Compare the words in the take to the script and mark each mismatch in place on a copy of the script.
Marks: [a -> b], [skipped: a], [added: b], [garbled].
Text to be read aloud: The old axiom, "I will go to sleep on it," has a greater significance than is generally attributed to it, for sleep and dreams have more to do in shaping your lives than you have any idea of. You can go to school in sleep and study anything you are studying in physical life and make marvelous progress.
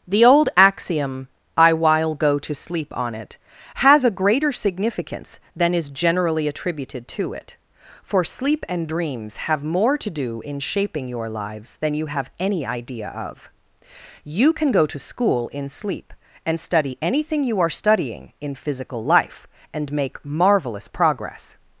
The old axiom, "I [will -> while] go to sleep on it," has a greater significance than is generally attributed to it, for sleep and dreams have more to do in shaping your lives than you have any idea of. You can go to school in sleep and study anything you are studying in physical life and make marvelous progress.